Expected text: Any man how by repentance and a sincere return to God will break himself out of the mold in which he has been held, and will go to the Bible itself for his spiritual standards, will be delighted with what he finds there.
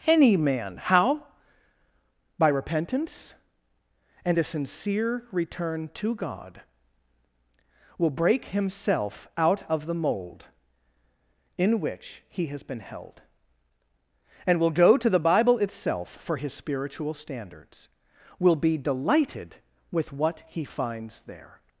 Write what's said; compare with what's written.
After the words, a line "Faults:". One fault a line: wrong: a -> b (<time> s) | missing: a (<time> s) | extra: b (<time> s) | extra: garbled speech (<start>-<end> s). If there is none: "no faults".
Any man how by repentance and a sincere return to God will break himself out of the mold in which he has been held, and will go to the Bible itself for his spiritual standards, will be delighted with what he finds there.
Faults:
no faults